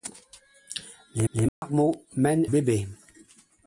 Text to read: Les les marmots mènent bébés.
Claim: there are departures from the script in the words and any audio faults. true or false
true